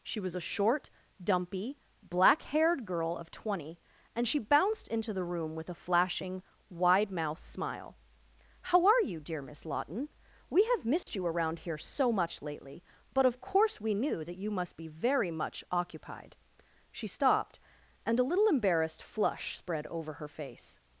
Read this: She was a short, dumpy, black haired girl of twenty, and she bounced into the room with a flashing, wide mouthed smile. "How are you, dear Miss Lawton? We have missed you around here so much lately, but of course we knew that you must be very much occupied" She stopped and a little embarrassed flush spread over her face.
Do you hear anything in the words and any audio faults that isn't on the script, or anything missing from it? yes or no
yes